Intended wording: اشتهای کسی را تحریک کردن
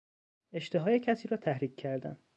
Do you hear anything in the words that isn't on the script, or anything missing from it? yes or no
no